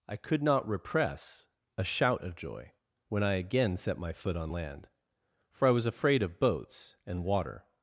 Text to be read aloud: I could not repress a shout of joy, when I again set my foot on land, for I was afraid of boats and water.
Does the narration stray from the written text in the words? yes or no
no